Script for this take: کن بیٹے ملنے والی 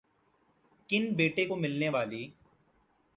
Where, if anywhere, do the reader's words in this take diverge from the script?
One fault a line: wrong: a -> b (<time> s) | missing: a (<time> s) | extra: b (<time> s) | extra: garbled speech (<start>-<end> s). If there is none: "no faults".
extra: کو (1.5 s)